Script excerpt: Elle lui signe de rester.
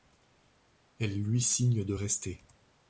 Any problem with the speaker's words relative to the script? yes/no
no